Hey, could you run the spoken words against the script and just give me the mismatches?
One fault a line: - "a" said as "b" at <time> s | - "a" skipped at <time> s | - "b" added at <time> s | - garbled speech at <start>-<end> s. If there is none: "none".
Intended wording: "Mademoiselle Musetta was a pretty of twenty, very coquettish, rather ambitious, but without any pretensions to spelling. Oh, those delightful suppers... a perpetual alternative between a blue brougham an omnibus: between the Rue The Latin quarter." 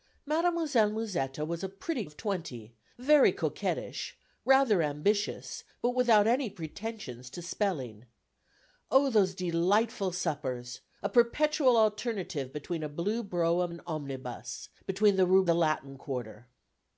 none